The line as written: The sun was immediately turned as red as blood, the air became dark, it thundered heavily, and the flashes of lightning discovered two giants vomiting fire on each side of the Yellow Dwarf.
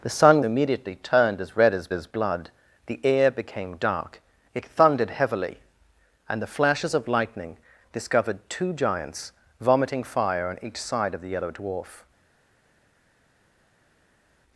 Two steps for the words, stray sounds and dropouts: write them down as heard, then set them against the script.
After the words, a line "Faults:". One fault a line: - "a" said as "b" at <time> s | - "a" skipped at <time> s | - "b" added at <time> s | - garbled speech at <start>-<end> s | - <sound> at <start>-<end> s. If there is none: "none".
The sun immediately turned as red as as blood, the air became dark, it thundered heavily, and the flashes of lightning discovered two giants vomiting fire on each side of the Yellow Dwarf.
Faults:
- "was" skipped at 0.4 s
- "as" added at 1.9 s